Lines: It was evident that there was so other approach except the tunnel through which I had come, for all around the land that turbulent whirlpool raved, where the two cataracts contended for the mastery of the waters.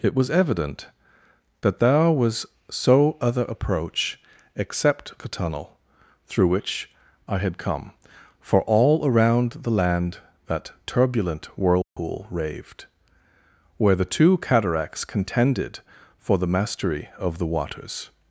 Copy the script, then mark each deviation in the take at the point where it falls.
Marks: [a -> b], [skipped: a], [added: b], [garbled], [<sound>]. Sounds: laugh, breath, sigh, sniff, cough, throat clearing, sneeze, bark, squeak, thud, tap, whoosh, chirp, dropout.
It was evident that there was so other approach except the tunnel through which I had come, for all around the land that turbulent whirlpool [dropout] raved, where the two cataracts contended for the mastery of the waters.